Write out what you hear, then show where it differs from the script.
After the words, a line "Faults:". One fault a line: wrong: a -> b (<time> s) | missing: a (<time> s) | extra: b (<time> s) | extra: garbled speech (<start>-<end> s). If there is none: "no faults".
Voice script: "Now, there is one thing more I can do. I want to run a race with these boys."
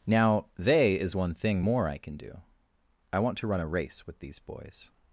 "Now, they is one thing more I can do. I want to run a race with these boys."
Faults:
wrong: there -> they (0.6 s)